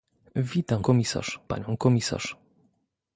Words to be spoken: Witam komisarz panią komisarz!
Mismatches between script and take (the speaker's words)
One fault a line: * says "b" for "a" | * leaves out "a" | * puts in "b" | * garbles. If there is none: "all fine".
all fine